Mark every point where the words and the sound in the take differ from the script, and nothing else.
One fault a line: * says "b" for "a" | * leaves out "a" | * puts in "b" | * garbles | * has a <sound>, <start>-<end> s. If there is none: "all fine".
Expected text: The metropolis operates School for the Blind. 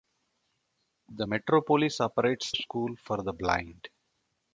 all fine